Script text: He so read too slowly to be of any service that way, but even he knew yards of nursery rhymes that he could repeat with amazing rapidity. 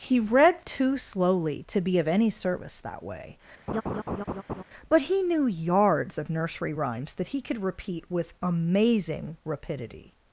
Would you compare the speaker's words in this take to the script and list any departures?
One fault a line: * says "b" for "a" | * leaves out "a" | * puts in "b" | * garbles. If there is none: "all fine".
* leaves out "so"
* leaves out "even"